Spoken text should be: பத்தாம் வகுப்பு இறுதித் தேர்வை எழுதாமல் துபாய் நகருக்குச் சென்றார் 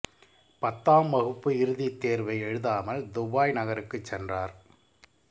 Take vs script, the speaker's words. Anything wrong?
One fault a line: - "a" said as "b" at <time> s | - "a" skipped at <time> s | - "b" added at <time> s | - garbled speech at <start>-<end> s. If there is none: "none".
none